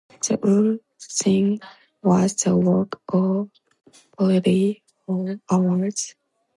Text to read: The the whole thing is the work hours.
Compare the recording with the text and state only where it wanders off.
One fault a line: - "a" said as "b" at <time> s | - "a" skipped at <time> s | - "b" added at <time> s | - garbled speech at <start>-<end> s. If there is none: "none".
- "the" skipped at 0.4 s
- "is" said as "was" at 2.0 s
- "of barely four" added at 3.1 s